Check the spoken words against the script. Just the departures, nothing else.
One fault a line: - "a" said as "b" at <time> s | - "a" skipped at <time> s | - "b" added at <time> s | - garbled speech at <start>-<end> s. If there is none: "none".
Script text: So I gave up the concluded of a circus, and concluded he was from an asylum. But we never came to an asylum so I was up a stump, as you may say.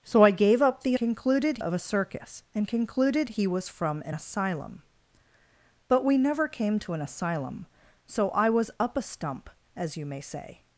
none